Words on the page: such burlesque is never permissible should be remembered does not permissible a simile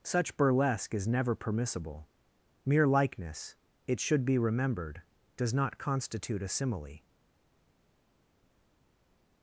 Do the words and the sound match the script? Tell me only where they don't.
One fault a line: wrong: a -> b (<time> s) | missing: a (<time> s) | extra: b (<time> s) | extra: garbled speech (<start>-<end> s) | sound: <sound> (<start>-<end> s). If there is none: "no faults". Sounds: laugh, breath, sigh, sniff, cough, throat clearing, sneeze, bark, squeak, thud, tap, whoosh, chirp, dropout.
extra: mere likeness it (2.6 s)
wrong: permissible -> constitute (5.8 s)